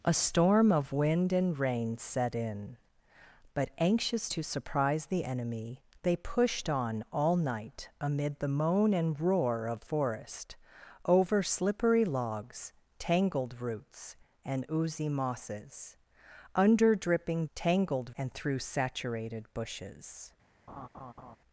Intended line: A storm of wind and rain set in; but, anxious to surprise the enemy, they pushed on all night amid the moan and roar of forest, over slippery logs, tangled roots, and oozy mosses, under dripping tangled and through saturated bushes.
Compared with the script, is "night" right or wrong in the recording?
right